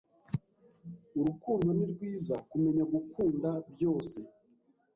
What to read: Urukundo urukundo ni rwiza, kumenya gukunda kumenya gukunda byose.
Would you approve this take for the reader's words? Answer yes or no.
no